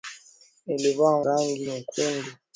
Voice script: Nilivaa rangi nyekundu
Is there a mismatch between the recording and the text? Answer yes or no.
no